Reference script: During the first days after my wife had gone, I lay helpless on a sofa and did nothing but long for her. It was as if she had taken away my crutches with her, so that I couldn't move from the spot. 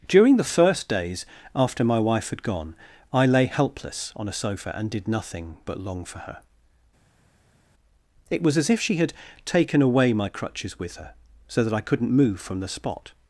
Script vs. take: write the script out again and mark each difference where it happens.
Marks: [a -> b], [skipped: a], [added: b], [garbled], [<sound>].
During the first days after my wife had gone, I lay helpless on a sofa and did nothing but long for her. It was as if she had taken away my crutches with her, so that I couldn't move from the spot.